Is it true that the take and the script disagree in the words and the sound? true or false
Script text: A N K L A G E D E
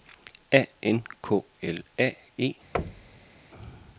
true